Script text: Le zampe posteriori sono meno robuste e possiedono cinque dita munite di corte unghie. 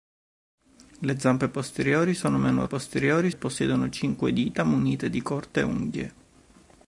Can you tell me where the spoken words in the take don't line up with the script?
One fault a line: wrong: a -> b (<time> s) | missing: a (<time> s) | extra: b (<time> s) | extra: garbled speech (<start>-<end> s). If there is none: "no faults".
wrong: robuste -> posteriori (2.6 s)